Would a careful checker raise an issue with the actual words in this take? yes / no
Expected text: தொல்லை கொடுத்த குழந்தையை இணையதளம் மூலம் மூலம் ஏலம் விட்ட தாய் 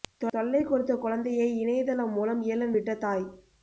yes